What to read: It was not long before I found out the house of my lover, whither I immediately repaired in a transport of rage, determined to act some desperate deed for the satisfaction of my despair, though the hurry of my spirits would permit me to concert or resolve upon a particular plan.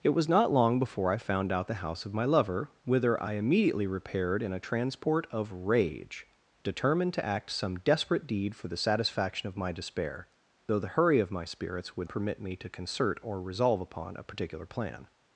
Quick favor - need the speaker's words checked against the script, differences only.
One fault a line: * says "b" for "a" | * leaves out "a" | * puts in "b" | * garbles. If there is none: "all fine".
all fine